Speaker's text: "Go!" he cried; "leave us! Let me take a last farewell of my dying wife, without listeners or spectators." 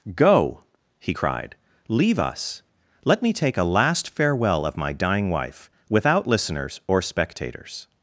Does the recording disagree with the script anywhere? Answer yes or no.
no